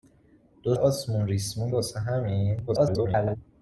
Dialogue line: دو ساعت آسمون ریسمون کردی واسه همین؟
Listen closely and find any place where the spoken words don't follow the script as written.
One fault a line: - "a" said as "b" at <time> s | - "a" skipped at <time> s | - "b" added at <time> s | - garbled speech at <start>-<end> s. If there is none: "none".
- "ساعت" skipped at 0.8 s
- "کردی" skipped at 1.7 s
- garbled speech at 2.7-3.4 s